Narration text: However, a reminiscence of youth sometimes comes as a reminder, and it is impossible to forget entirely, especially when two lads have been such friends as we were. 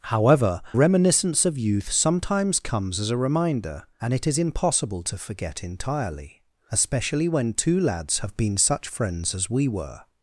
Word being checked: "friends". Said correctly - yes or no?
yes